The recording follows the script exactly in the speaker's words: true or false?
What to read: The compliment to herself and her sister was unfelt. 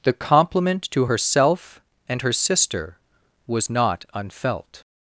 false